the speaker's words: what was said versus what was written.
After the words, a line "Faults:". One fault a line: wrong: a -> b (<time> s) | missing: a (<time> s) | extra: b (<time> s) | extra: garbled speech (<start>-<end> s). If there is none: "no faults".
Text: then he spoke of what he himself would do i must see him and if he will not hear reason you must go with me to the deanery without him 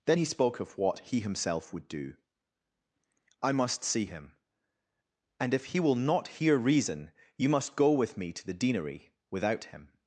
then he spoke of what he himself would do i must see him and if he will not hear reason you must go with me to the deanery without him
Faults:
no faults